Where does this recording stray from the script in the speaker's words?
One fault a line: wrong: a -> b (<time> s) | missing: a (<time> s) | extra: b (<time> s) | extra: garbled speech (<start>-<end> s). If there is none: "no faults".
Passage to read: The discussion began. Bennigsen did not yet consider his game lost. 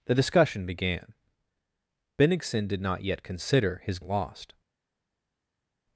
missing: game (4.0 s)